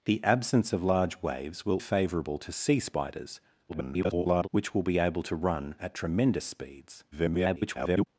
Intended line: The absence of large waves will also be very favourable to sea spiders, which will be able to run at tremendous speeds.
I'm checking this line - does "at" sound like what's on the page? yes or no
yes